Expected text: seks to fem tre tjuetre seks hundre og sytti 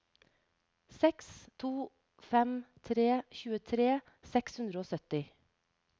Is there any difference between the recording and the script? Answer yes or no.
no